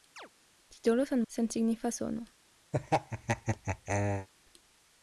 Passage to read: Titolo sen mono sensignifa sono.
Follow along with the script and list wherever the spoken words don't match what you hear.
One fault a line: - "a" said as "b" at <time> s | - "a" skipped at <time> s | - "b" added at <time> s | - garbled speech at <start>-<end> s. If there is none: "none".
- "mono" skipped at 1.2 s